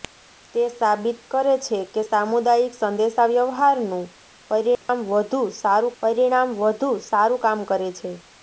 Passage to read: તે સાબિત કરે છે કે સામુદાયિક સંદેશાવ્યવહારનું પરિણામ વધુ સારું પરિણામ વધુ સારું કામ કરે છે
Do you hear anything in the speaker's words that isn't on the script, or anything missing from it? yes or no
no